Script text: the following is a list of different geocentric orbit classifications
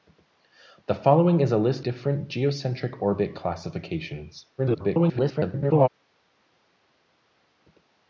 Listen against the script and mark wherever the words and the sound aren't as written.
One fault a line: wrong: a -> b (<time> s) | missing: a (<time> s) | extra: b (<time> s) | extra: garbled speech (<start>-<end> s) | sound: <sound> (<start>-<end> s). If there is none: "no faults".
missing: of (1.9 s)
extra: garbled speech (4.6-5.9 s)